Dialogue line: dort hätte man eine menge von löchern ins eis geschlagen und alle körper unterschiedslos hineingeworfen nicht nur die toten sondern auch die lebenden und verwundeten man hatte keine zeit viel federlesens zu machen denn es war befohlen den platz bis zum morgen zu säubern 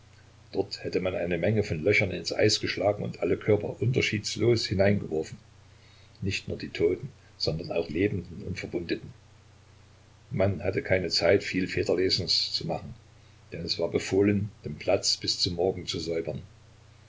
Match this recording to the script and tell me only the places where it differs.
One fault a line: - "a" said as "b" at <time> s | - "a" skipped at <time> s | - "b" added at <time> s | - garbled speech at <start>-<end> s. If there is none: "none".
- "die" skipped at 7.9 s